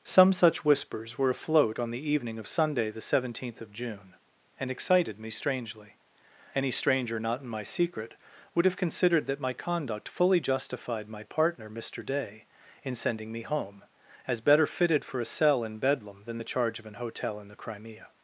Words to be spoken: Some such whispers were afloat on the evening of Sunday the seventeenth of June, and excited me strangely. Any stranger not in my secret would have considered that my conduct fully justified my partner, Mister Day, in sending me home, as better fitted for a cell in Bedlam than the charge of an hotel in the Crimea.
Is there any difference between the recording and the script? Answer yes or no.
no